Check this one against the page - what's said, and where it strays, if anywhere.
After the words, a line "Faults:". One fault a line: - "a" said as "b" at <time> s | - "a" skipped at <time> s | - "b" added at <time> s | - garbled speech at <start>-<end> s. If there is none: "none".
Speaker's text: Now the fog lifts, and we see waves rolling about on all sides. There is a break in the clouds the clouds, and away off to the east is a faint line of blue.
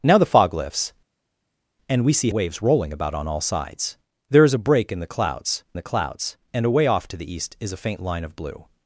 Now the fog lifts, and we see waves rolling about on all sides. There is a break in the clouds the clouds, and away off to the east is a faint line of blue.
Faults:
none